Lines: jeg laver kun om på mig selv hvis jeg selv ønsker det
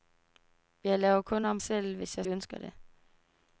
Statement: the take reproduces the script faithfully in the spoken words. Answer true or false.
false